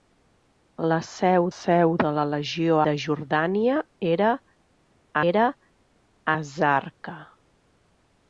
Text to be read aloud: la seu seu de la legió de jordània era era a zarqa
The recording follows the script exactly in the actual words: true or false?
true